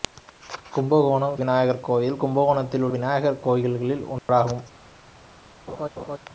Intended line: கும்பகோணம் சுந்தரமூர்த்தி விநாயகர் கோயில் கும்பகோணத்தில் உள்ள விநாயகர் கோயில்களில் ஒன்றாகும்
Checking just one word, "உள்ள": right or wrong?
wrong